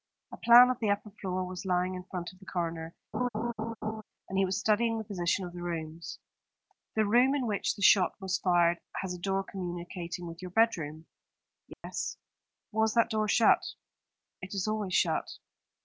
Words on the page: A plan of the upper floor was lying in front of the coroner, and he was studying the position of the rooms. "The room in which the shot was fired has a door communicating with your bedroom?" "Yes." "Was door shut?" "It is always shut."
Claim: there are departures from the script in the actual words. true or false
true